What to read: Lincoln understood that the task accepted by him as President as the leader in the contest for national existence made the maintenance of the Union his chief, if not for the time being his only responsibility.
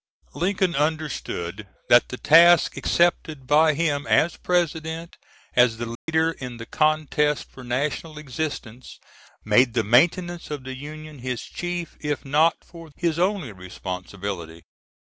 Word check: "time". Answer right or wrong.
wrong